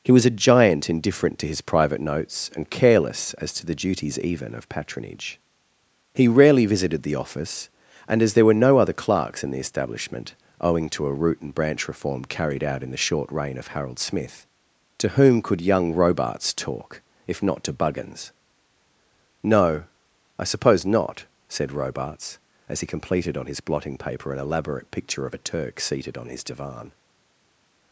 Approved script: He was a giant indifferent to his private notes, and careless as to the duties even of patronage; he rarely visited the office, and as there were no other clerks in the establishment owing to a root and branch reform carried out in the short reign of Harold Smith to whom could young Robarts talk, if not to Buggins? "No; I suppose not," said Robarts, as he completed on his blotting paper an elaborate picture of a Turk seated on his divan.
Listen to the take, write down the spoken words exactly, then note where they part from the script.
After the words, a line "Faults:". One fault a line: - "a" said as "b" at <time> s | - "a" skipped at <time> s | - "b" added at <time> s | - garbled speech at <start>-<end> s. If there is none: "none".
He was a giant indifferent to his private notes, and careless as to the duties even of patronage; he rarely visited the office, and as there were no other clerks in the establishment owing to a root and branch reform carried out in the short reign of Harold Smith to whom could young Robarts talk, if not to Buggins? "No; I suppose not," said Robarts, as he completed on his blotting paper an elaborate picture of a Turk seated on his divan.
Faults:
none